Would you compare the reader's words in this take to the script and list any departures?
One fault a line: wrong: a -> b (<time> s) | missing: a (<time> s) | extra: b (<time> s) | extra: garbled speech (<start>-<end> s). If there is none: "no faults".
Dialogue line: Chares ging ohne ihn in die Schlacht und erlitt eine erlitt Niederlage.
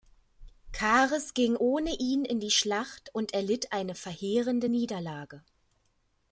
wrong: erlitt -> verheerende (4.0 s)